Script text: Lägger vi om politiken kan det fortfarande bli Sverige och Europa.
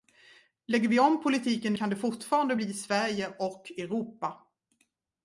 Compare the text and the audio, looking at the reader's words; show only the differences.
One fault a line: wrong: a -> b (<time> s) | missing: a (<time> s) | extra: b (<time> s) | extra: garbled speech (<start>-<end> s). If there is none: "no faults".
no faults